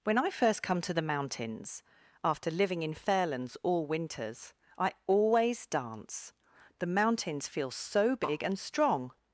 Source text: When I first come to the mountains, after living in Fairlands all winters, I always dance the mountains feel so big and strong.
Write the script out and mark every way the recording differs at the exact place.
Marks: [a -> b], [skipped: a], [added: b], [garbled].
When I first come to the mountains, after living in Fairlands all winters, I always dance the mountains feel so big and strong.